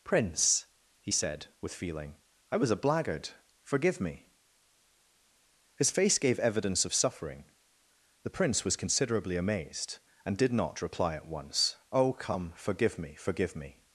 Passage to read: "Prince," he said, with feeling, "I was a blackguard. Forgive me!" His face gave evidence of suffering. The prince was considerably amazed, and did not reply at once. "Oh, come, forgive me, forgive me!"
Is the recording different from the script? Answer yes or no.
no